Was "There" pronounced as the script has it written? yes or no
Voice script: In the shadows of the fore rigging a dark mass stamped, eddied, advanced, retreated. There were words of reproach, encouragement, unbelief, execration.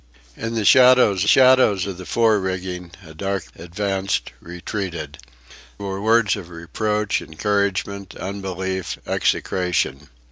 no